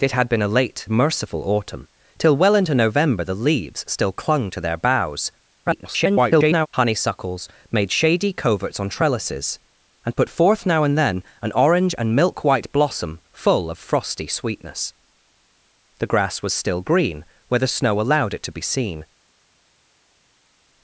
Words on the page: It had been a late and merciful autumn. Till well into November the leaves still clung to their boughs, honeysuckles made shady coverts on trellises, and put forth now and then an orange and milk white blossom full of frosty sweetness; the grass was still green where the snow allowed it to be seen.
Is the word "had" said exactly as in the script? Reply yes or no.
yes